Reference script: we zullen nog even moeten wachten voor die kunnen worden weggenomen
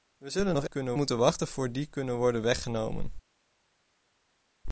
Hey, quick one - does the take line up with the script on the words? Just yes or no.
no